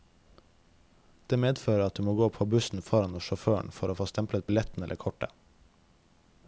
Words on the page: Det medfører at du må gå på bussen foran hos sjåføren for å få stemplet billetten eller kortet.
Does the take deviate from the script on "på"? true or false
false